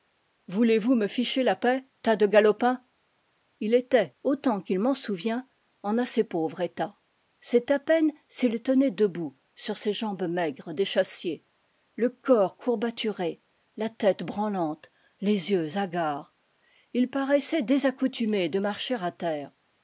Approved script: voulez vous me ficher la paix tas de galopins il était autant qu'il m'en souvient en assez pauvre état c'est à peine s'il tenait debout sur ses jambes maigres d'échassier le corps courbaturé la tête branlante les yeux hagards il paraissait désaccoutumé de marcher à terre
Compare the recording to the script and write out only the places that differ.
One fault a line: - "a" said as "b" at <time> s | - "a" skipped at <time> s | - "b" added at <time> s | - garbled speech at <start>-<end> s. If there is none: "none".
none